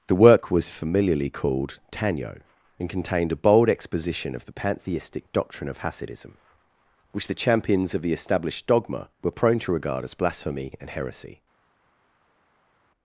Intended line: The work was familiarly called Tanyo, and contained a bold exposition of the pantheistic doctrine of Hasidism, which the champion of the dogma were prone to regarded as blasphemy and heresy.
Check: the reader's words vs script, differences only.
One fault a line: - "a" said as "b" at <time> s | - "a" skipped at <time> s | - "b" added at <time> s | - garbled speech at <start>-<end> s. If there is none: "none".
- "champion" said as "champions" at 7.4 s
- "established" added at 8.1 s
- "regarded" said as "regard" at 9.7 s